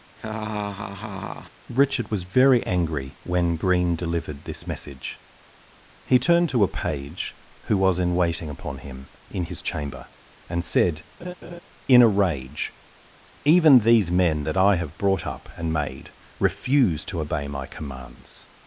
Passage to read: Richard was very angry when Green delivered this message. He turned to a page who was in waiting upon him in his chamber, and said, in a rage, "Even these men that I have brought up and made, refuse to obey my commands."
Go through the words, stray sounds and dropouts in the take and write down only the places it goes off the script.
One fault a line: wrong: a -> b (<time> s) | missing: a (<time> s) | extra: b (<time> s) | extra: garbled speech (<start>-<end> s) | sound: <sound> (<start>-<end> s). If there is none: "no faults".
sound: laugh (0.2-1.5 s)
sound: laugh (11.2-11.6 s)